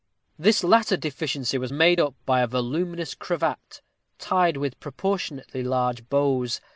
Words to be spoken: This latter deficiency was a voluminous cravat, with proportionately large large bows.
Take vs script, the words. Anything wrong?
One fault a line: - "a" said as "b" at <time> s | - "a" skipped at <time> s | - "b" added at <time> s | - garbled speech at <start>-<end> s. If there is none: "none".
- "made up by" added at 1.7 s
- "tied" added at 4.2 s
- "large" skipped at 6.1 s